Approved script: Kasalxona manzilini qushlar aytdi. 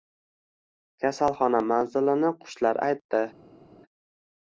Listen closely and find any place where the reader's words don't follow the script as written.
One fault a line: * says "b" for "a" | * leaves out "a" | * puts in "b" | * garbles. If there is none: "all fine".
all fine